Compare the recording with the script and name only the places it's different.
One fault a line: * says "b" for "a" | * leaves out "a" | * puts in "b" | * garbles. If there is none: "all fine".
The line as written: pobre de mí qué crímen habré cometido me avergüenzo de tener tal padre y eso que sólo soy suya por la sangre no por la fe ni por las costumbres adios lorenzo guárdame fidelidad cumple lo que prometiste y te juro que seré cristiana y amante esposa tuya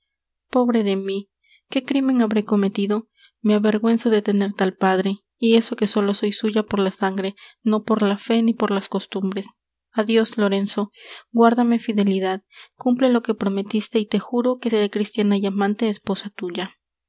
all fine